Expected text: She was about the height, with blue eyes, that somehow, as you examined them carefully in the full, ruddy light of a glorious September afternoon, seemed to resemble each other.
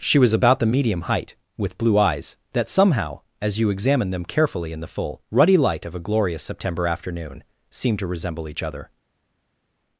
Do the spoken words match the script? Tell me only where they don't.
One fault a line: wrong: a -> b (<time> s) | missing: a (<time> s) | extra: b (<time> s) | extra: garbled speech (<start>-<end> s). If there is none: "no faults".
extra: medium (0.7 s)